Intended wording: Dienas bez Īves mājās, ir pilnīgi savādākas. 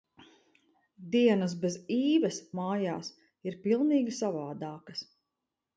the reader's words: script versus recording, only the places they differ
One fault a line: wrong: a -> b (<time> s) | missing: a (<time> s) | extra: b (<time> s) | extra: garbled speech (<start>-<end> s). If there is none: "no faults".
no faults